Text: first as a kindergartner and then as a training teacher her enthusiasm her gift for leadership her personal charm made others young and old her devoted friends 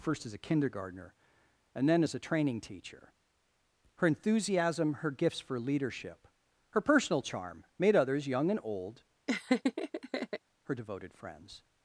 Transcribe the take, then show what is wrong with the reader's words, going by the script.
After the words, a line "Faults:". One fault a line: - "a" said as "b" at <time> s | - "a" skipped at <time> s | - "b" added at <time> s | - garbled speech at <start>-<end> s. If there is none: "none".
first as a kindergartner and then as a training teacher her enthusiasm her gifts for leadership her personal charm made others young and old her devoted friends
Faults:
- "gift" said as "gifts" at 5.1 s